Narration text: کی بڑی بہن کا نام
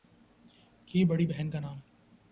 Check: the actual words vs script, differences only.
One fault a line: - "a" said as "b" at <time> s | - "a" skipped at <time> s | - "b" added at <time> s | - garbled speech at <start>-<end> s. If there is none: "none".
none